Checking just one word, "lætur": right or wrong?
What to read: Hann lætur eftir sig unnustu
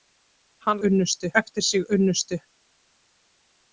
wrong